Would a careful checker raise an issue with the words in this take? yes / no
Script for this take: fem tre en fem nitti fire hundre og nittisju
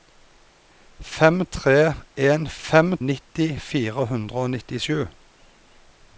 no